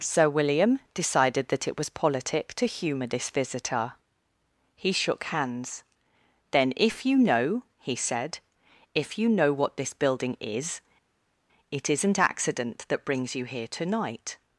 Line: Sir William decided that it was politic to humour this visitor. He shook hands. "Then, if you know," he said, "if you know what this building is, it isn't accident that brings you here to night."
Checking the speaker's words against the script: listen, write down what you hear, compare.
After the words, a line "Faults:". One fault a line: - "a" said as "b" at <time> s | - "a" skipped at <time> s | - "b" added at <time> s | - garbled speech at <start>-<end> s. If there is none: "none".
Sir William decided that it was politic to humour this visitor. He shook hands. "Then, if you know," he said, "if you know what this building is, it isn't accident that brings you here to night."
Faults:
none